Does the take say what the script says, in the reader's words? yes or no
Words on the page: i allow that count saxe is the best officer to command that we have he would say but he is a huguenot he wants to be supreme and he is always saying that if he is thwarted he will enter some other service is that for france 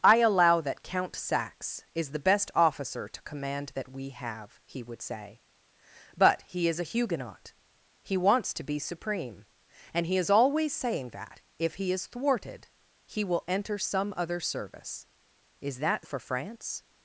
yes